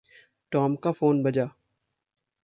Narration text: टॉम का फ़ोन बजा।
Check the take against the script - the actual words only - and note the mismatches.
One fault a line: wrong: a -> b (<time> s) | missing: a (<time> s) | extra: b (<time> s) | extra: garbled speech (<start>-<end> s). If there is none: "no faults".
no faults